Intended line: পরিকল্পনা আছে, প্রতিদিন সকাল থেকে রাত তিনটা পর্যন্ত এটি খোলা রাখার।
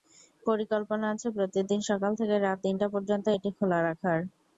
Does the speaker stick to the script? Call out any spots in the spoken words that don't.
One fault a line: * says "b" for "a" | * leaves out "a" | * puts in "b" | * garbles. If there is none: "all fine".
all fine